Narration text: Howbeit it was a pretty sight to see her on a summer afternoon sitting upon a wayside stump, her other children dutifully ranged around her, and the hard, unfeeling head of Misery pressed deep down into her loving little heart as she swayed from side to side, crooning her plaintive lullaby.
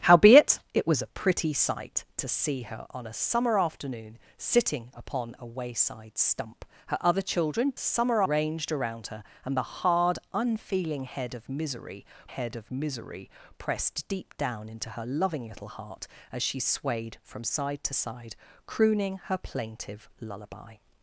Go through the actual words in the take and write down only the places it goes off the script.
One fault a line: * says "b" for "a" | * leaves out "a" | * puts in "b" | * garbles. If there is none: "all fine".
* says "summer" for "dutifully"
* puts in "head of Misery"